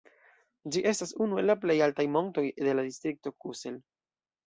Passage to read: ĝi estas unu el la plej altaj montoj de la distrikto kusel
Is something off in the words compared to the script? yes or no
no